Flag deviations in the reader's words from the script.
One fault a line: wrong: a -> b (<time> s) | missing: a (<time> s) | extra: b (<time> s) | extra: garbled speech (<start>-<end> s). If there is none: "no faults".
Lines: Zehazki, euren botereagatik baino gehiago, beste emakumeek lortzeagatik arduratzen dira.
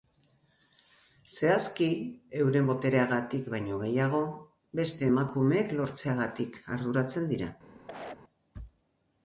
no faults